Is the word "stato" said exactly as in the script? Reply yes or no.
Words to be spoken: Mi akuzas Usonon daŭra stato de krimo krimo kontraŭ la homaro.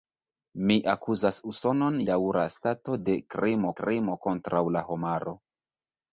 yes